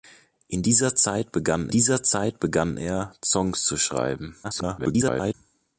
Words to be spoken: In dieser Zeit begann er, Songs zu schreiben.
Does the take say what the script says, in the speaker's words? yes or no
no